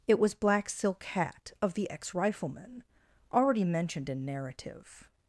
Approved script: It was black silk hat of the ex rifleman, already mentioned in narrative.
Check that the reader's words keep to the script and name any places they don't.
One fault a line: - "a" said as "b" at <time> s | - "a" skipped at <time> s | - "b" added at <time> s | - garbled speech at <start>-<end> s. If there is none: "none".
none